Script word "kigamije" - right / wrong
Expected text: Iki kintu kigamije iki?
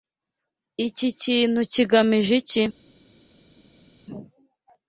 right